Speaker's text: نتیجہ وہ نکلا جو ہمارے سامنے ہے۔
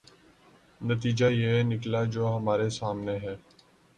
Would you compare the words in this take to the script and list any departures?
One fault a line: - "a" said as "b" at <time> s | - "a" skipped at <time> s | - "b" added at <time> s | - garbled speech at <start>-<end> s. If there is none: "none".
- "وہ" said as "یہ" at 1.2 s